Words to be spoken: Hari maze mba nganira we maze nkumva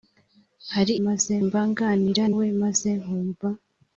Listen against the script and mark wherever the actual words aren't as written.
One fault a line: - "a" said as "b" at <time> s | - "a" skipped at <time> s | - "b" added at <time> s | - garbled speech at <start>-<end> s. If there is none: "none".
none